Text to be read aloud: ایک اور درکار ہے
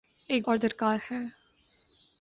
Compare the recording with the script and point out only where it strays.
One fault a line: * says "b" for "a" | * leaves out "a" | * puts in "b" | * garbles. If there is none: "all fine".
all fine